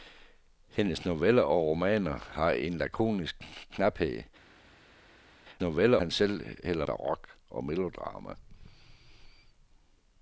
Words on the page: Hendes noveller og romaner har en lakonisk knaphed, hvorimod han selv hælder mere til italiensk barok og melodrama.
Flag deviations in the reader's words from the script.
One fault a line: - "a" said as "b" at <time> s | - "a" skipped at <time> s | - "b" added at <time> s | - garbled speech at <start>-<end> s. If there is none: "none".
- "hvorimod" said as "noveller" at 5.6 s
- "mere til italiensk" skipped at 6.9 s